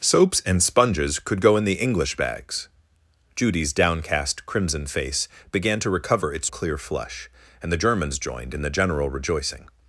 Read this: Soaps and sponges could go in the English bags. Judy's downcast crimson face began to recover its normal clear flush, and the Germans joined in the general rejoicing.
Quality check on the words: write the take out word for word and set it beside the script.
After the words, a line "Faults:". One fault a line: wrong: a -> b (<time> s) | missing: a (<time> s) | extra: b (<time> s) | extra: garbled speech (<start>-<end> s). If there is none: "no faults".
Soaps and sponges could go in the English bags. Judy's downcast crimson face began to recover its clear flush, and the Germans joined in the general rejoicing.
Faults:
missing: normal (6.5 s)